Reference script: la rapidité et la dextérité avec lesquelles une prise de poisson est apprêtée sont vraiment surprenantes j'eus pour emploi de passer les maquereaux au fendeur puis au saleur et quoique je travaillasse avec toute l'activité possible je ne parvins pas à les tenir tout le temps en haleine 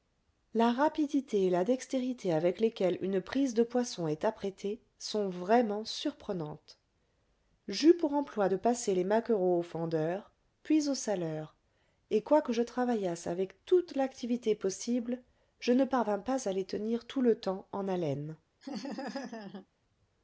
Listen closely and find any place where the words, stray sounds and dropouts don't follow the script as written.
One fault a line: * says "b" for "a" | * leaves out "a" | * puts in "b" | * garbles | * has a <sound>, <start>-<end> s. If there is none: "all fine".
* has a laugh, 18.6-19.7 s